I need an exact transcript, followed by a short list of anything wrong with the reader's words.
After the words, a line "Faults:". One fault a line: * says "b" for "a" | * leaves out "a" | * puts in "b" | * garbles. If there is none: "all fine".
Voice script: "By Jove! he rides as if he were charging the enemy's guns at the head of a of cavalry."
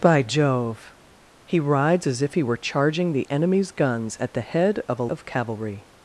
"By Jove! he rides as if he were charging the enemy's guns at the head of a of cavalry."
Faults:
all fine